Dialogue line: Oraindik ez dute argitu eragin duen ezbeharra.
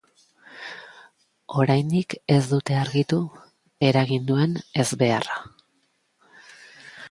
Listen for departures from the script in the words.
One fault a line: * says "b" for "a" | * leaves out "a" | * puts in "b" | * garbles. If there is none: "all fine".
all fine